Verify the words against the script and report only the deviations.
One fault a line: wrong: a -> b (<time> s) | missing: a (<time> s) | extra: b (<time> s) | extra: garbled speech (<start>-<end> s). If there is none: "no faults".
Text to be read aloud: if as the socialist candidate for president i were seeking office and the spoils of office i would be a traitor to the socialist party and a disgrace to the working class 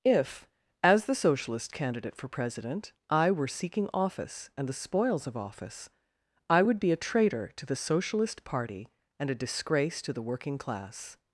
no faults